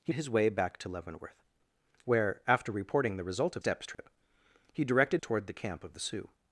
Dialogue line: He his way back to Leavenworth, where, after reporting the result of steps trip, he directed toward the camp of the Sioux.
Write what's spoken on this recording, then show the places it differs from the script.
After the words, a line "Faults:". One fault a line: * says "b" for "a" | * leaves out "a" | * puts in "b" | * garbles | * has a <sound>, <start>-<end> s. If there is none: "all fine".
He his way back to Leavenworth, where, after reporting the result of steps trip, he directed toward the camp of the Sioux.
Faults:
* has a dropout, 3.9-4.0 s